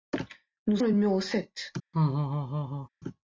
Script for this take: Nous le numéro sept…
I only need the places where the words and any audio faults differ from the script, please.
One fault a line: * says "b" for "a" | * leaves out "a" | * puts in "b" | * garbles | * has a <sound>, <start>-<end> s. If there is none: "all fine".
* has a laugh, 1.9-2.9 s